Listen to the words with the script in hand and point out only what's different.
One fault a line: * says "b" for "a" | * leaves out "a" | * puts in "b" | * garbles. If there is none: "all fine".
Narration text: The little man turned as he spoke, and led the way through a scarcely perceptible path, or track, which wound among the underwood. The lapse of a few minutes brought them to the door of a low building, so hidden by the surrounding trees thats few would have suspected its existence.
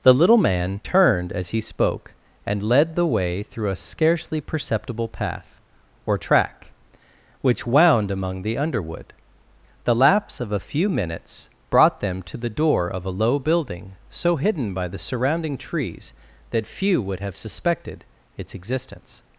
* says "that" for "thats"